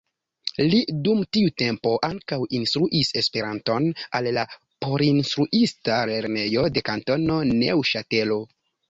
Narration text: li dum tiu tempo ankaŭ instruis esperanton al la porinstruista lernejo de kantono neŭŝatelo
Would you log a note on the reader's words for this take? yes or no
no